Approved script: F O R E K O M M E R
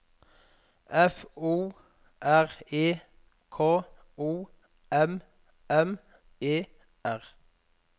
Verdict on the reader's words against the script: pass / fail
pass